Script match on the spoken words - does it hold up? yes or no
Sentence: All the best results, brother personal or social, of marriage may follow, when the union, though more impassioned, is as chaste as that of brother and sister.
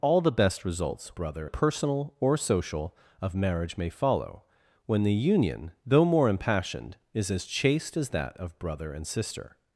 yes